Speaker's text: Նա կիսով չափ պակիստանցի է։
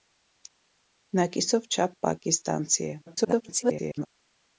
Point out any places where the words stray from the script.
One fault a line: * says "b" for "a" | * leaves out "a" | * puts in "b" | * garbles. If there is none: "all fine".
* garbles